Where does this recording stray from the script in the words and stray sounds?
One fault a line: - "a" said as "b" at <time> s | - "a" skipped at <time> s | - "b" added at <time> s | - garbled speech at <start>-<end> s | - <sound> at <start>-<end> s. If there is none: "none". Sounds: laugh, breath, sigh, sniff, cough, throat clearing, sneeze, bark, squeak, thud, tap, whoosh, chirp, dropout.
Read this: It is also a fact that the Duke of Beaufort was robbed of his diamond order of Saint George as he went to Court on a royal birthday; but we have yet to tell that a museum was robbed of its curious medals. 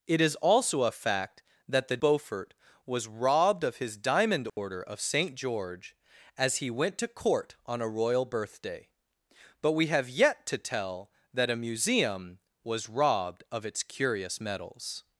- "Duke of" skipped at 2.0 s
- dropout at 4.5-4.6 s